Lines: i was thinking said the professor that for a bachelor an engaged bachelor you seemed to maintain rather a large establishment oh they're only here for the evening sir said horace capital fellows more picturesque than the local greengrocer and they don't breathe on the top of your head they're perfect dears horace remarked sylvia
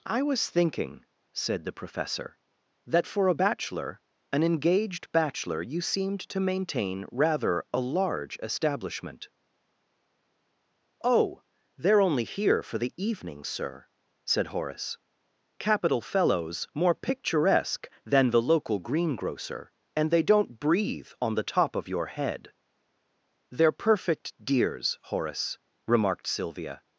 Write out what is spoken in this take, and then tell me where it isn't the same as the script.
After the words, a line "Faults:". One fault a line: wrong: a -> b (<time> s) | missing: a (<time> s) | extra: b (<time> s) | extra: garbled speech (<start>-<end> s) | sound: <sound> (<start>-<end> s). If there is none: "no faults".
i was thinking said the professor that for a bachelor an engaged bachelor you seemed to maintain rather a large establishment oh they're only here for the evening sir said horace capital fellows more picturesque than the local greengrocer and they don't breathe on the top of your head they're perfect dears horace remarked sylvia
Faults:
no faults